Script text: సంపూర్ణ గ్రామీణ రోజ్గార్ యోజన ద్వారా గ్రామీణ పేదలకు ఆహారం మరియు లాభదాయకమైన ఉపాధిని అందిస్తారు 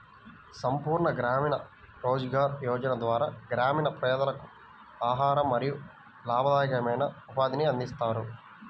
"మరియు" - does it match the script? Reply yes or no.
yes